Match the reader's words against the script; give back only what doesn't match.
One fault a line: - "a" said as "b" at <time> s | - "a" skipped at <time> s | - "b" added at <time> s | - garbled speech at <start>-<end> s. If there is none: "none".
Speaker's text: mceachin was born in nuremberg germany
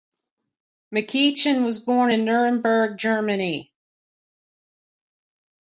none